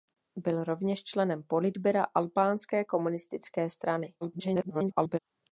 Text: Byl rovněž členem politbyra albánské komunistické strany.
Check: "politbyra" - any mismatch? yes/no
no